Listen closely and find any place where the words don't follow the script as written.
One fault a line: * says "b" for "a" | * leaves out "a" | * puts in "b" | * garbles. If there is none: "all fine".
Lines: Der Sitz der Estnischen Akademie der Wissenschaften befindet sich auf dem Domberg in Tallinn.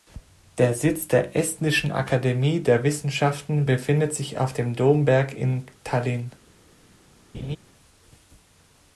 all fine